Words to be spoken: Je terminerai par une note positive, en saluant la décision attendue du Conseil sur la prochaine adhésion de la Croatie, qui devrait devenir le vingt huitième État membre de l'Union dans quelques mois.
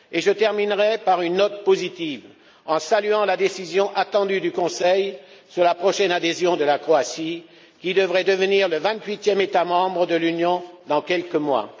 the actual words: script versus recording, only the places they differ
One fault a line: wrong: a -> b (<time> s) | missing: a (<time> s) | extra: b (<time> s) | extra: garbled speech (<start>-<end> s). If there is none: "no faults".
no faults